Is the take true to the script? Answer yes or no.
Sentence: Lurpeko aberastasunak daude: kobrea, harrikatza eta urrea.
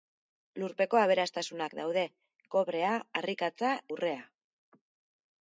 no